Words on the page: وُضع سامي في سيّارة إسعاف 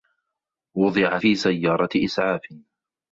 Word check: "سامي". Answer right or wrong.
wrong